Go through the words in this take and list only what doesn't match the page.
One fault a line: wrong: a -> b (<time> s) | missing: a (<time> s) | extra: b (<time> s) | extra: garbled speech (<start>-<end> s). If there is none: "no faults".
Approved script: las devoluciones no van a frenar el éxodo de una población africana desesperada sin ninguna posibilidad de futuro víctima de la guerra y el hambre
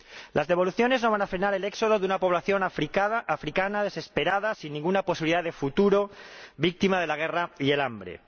no faults